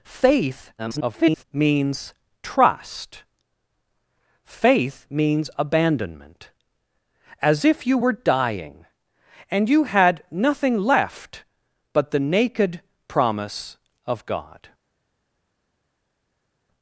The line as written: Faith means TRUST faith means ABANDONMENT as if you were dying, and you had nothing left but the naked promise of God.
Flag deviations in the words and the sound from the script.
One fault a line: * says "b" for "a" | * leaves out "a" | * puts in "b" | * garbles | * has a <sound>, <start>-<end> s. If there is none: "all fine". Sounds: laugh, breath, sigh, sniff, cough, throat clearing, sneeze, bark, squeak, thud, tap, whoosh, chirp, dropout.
* garbles